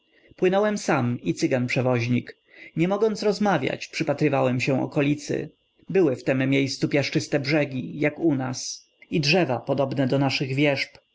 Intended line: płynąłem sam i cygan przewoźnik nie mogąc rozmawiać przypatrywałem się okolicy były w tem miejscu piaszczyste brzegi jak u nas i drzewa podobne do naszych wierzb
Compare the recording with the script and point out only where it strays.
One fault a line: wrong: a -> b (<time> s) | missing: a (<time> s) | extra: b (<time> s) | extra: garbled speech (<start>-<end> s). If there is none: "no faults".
no faults